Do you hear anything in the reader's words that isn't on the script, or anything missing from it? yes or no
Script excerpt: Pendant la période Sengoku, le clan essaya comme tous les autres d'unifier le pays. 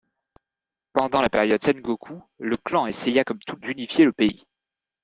yes